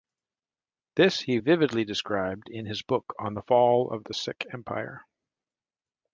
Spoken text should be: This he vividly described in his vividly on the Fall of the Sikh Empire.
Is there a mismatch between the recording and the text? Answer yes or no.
yes